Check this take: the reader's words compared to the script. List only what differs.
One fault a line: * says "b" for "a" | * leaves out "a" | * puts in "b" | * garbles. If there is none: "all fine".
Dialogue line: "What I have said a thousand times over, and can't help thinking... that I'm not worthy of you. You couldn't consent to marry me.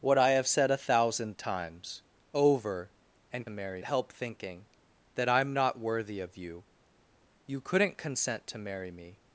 * says "marry" for "can't"